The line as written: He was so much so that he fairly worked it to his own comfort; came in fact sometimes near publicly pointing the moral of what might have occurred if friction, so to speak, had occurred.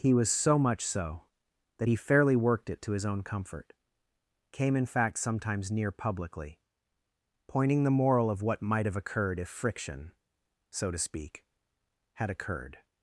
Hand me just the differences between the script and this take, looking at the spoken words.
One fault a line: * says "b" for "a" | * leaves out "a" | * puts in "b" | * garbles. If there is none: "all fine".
all fine